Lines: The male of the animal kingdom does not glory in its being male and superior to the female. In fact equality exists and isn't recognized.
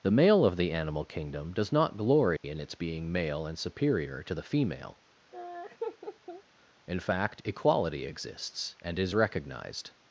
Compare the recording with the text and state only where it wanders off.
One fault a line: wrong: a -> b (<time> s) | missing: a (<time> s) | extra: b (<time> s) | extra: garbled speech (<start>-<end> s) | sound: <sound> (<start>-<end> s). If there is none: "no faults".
sound: dropout (2.4-2.4 s)
sound: laugh (5.3-6.4 s)
wrong: isn't -> is (9.0 s)